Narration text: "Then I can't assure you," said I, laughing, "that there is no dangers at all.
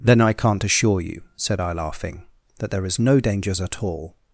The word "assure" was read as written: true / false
true